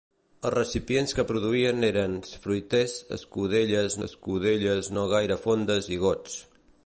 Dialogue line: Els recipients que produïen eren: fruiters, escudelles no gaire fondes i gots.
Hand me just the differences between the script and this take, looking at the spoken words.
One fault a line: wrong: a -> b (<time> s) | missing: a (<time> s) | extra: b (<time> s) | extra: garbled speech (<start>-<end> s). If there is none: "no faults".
extra: escudelles (4.1 s)